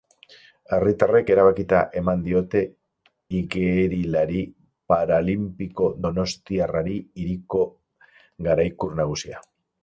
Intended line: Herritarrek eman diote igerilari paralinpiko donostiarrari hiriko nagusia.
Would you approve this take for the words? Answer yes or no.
no